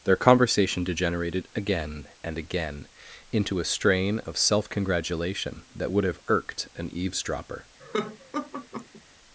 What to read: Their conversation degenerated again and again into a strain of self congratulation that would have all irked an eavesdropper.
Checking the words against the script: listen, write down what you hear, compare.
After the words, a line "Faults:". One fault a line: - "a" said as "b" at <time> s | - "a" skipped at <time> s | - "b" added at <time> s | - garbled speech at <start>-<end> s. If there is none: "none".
Their conversation degenerated again and again into a strain of self congratulation that would have irked an eavesdropper.
Faults:
- "all" skipped at 6.2 s